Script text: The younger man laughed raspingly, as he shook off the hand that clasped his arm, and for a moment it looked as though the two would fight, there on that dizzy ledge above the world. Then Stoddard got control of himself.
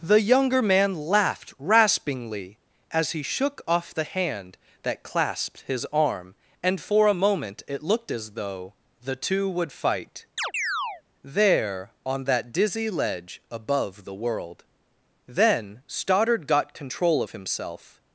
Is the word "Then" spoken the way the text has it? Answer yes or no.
yes